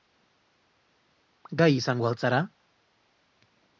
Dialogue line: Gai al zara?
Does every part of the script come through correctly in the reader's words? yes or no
no